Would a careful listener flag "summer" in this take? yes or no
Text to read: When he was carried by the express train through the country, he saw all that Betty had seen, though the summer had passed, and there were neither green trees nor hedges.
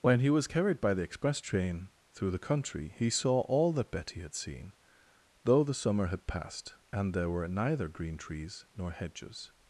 no